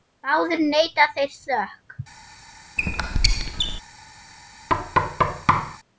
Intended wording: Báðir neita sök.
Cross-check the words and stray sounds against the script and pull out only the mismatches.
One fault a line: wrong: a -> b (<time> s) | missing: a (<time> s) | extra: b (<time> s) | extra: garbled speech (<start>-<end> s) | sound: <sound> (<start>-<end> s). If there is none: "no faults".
extra: þeir (1.2 s)
sound: squeak (2.8-3.8 s)
sound: thud (4.7-5.8 s)